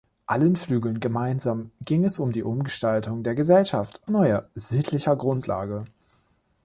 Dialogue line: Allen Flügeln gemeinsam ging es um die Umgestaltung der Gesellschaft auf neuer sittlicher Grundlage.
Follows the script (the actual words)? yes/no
no